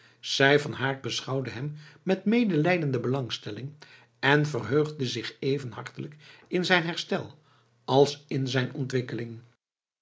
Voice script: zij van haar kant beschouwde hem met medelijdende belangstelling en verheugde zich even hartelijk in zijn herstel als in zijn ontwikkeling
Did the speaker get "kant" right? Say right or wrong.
wrong